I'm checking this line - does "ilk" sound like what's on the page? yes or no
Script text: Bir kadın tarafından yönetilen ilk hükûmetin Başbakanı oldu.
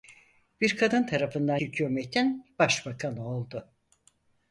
no